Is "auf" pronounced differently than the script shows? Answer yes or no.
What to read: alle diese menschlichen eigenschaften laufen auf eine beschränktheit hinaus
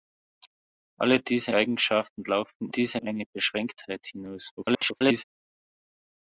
yes